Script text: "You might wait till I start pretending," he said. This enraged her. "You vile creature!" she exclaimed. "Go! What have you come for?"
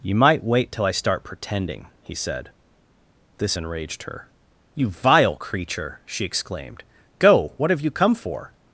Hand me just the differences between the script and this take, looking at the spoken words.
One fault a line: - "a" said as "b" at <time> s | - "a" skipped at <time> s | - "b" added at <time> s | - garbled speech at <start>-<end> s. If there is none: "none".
none